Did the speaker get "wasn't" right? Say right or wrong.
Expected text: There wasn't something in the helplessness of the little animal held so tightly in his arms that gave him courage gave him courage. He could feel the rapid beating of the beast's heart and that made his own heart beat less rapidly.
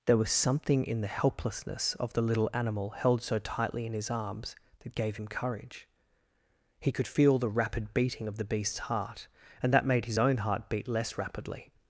wrong